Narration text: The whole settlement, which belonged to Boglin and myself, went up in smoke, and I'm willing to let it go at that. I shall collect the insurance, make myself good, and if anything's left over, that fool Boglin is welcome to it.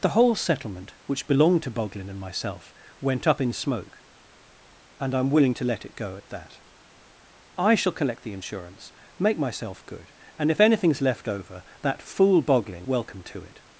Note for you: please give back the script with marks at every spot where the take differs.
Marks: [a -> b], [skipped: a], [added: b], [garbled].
The whole settlement, which belonged to Boglin and myself, went up in smoke, and I'm willing to let it go at that. I shall collect the insurance, make myself good, and if anything's left over, that fool Boglin [skipped: is] welcome to it.